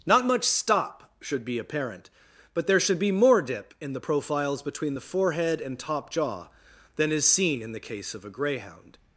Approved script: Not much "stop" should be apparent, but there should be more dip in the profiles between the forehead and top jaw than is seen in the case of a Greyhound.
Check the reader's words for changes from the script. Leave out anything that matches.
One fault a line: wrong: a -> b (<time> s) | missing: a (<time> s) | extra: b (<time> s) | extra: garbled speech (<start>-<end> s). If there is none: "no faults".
no faults